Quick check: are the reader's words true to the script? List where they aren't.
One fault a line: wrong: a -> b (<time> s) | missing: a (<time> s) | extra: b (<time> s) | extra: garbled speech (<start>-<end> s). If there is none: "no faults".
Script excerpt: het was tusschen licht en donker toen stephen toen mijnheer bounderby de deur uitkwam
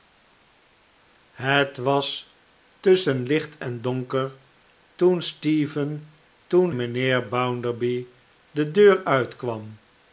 no faults